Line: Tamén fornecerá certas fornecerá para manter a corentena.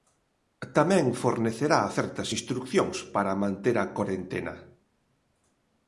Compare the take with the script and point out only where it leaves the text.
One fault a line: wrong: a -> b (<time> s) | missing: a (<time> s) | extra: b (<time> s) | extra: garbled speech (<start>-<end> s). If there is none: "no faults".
wrong: fornecerá -> instrucións (2.4 s)